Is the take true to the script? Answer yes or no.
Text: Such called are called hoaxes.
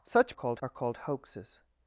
yes